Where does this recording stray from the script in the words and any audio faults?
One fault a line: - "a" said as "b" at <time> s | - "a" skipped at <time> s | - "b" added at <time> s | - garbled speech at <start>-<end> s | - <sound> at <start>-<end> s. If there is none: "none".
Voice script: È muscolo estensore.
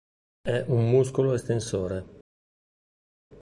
- "un" added at 0.7 s